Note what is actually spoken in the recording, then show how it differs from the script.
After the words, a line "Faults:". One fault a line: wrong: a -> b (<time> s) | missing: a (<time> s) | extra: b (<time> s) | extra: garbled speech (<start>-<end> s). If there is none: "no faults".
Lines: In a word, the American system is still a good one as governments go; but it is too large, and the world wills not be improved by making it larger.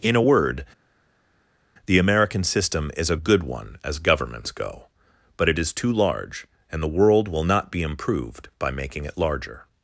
In a word, the American system is a good one as governments go; but it is too large, and the world will not be improved by making it larger.
Faults:
missing: still (3.1 s)
wrong: wills -> will (7.3 s)